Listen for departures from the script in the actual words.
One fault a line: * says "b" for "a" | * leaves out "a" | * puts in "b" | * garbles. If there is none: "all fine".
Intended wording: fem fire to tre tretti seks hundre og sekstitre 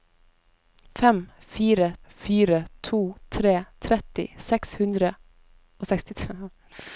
* puts in "fire"